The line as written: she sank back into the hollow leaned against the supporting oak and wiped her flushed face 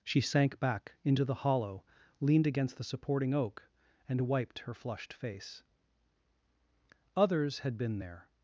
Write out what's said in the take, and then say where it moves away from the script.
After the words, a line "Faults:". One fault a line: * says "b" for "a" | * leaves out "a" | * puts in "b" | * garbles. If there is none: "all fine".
she sank back into the hollow leaned against the supporting oak and wiped her flushed face others had been there
Faults:
* puts in "others had been there"